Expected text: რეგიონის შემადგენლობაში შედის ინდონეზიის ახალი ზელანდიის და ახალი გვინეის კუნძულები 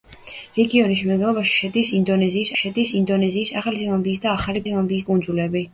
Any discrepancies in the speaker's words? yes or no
yes